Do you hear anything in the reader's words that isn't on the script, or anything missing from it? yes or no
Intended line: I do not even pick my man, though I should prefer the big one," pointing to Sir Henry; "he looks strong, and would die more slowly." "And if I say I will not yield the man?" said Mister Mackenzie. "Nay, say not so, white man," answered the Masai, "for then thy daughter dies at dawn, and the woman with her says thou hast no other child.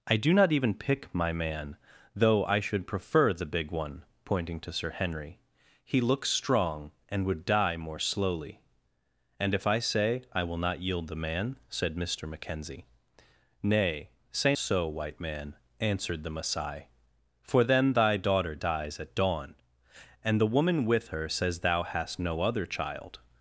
yes